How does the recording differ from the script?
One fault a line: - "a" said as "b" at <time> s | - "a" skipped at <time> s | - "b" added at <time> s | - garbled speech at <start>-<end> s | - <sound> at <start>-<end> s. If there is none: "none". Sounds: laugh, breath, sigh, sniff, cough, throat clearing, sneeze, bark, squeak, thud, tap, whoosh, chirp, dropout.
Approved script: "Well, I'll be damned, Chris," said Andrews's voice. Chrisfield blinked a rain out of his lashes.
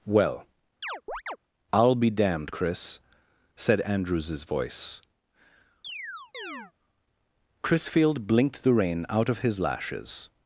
- chirp at 0.8-1.4 s
- chirp at 5.8-6.7 s
- "a" said as "the" at 8.6 s